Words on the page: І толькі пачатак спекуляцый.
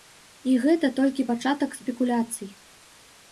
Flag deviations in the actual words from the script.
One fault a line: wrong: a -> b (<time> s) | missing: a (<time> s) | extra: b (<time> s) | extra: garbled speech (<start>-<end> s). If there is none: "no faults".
extra: гэта (0.6 s)